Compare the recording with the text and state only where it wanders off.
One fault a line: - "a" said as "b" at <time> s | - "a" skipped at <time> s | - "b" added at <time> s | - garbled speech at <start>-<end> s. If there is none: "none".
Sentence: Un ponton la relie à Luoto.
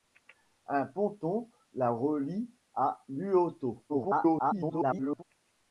- garbled speech at 3.9-5.2 s